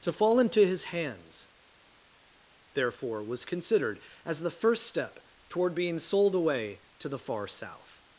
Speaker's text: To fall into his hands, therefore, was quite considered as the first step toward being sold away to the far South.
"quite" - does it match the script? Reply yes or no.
no